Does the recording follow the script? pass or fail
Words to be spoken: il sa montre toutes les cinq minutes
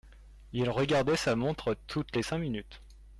fail